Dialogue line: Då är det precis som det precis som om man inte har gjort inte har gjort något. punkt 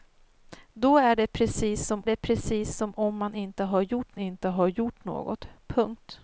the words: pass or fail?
pass